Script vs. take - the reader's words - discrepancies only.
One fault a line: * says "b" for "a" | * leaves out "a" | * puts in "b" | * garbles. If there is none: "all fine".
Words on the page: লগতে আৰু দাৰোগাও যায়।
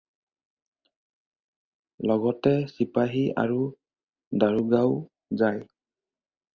* puts in "চিপাহী"